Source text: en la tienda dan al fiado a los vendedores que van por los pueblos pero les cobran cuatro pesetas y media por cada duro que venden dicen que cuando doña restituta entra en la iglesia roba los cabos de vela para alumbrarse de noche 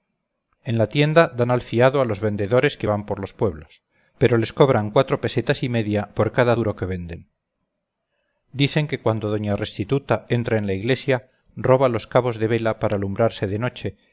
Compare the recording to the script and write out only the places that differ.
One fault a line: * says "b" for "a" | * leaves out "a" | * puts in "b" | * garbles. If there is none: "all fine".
all fine